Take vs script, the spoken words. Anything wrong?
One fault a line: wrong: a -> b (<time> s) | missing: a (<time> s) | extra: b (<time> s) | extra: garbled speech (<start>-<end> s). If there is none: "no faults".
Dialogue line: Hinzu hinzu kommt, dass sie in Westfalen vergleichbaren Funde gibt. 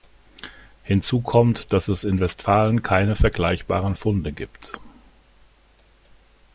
missing: hinzu (1.2 s)
wrong: sie -> es (1.9 s)
extra: keine (2.8 s)